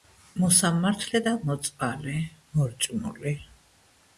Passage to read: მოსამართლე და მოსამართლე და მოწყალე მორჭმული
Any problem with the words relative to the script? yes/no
yes